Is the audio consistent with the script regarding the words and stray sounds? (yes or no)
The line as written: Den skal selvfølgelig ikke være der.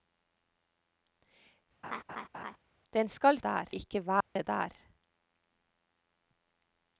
no